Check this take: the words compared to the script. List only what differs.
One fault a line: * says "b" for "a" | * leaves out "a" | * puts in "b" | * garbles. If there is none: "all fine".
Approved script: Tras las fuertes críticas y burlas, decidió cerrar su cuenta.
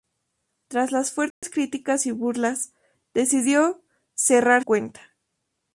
* leaves out "su"